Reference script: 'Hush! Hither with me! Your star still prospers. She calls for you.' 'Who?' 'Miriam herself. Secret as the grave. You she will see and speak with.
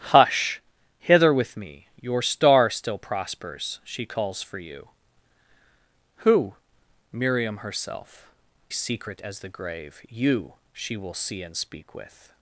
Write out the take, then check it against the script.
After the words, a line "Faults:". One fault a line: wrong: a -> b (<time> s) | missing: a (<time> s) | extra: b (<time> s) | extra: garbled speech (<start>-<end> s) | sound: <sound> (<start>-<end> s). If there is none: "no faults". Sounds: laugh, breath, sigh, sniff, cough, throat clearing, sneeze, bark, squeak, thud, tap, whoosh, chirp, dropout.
'Hush! Hither with me! Your star still prospers. She calls for you.' 'Who?' 'Miriam herself. Secret as the grave. You she will see and speak with.
Faults:
no faults